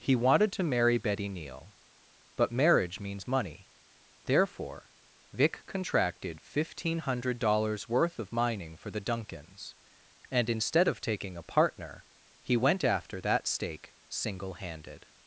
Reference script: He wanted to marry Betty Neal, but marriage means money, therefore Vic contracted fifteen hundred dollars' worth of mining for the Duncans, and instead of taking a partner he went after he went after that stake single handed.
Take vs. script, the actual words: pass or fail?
fail